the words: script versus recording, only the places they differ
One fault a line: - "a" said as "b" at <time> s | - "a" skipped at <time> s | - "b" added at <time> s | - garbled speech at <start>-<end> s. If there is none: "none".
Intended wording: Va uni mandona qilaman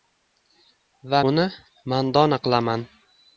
none